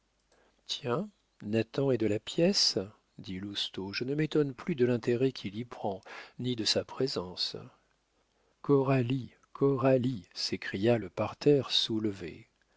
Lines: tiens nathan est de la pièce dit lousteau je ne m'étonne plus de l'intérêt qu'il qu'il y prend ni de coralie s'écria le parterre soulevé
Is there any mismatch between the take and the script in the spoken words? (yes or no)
yes